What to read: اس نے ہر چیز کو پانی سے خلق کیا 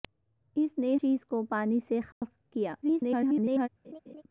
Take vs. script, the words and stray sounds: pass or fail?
fail